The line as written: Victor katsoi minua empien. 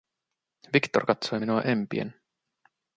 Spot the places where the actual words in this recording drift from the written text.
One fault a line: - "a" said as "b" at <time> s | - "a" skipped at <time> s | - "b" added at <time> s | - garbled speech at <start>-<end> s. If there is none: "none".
none